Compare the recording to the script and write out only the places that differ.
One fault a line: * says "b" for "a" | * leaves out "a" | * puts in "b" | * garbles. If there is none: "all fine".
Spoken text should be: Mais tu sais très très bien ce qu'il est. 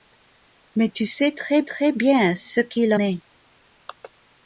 all fine